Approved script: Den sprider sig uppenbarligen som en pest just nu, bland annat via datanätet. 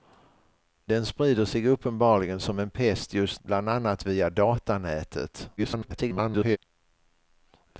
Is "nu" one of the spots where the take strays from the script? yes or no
yes